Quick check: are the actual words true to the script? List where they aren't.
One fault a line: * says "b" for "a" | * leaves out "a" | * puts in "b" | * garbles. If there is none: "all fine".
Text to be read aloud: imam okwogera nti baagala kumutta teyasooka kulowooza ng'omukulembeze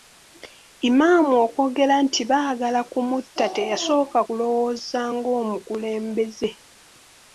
all fine